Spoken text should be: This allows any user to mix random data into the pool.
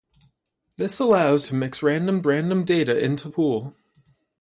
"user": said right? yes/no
no